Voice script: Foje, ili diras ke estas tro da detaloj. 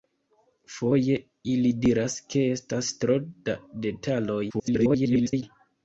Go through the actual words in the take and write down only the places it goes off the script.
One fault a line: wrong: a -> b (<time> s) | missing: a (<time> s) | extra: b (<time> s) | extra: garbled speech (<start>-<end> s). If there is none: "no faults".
extra: garbled speech (4.5-5.4 s)